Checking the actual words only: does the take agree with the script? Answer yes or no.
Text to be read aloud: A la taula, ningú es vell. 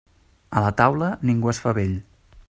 no